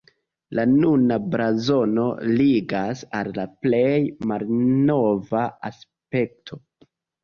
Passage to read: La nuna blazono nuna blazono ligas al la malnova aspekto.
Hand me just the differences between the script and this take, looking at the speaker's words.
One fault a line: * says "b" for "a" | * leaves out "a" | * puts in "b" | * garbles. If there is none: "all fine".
* leaves out "nuna blazono"
* puts in "plej"